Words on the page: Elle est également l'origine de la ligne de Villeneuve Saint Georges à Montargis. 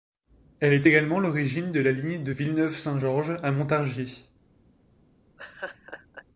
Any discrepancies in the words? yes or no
no